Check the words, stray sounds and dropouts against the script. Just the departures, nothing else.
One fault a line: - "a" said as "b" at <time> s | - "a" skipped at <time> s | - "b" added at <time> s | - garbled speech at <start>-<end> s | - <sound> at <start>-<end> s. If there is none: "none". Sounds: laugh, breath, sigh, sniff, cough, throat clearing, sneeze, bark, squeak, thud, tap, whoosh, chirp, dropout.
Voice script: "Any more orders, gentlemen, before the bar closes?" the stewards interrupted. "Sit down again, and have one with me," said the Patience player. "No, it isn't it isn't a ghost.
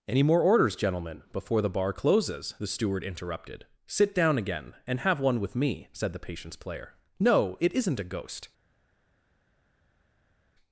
- "stewards" said as "steward" at 2.6 s
- "it isn't" skipped at 8.0 s